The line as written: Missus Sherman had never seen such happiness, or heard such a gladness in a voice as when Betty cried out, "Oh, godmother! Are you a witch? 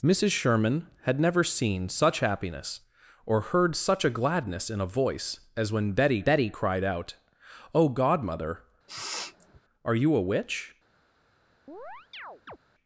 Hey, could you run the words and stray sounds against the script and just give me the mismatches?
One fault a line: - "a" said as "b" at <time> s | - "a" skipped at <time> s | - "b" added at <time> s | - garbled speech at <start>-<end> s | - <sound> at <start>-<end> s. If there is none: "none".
- "Betty" added at 6.2 s
- sniff at 8.9-9.6 s
- chirp at 11.7-12.6 s